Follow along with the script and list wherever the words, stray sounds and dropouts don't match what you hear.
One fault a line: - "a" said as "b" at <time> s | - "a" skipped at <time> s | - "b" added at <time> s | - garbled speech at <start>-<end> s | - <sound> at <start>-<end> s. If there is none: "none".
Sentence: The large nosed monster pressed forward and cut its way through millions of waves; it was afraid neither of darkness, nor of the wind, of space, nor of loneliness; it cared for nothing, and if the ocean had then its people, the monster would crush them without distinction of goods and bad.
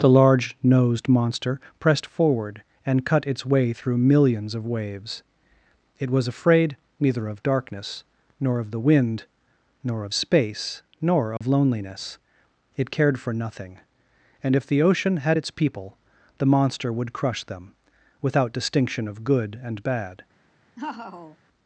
- "nor" added at 9.8 s
- dropout at 11.4-11.4 s
- "then" skipped at 15.4 s
- "goods" said as "good" at 19.2 s
- laugh at 20.8-21.4 s